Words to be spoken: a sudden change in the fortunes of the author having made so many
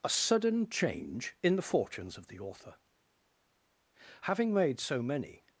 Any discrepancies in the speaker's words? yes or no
no